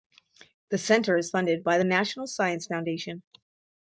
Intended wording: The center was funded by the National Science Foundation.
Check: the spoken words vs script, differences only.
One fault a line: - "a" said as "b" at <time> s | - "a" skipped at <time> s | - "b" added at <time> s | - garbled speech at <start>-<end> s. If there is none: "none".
- "was" said as "is" at 1.1 s